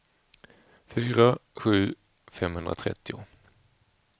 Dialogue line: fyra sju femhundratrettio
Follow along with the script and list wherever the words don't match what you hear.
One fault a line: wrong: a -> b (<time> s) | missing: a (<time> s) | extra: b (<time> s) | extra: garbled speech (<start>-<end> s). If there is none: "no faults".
no faults